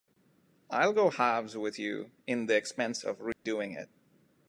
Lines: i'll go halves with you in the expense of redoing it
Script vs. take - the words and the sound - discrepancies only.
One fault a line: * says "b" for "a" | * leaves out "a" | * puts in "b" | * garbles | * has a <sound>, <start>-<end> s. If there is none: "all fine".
* has a dropout, 3.3-3.5 s